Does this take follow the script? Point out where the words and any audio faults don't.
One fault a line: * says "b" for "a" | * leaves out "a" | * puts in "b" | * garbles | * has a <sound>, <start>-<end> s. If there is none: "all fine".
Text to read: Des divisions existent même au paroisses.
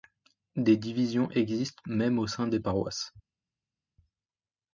* puts in "sein des"